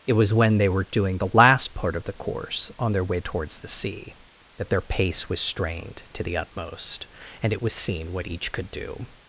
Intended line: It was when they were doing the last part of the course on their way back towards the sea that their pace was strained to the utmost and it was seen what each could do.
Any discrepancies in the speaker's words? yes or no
yes